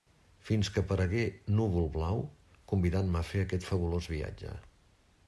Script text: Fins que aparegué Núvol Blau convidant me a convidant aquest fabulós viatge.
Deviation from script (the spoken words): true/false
true